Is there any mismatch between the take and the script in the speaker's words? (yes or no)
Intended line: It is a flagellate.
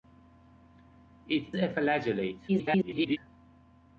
yes